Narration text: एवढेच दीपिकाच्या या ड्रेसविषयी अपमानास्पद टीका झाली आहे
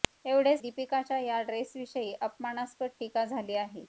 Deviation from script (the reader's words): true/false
false